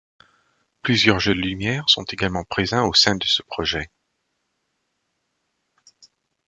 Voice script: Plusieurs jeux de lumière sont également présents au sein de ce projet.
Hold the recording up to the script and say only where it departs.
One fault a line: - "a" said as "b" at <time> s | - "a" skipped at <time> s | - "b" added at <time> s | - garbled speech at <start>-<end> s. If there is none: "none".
none